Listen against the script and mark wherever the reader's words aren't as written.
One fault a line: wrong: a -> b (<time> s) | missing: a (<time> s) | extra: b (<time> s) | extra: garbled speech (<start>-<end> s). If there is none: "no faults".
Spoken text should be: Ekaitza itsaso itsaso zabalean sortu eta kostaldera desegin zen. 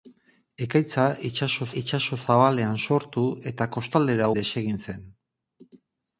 no faults